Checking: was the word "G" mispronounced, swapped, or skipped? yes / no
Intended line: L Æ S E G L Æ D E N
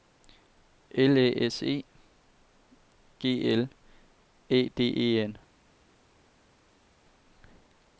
no